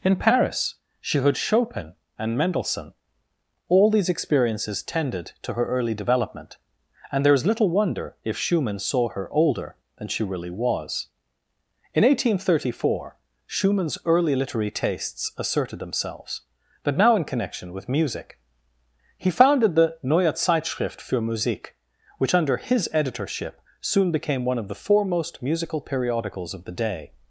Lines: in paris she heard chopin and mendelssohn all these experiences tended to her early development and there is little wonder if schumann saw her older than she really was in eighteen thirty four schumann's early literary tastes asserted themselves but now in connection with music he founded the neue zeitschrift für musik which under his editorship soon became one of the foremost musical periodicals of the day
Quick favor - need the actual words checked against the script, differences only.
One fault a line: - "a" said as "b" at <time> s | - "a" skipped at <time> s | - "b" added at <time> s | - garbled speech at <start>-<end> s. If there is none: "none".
none